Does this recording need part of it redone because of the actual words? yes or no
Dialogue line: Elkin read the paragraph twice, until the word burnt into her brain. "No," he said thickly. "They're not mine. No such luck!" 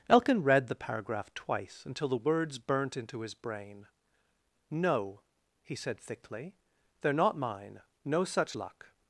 yes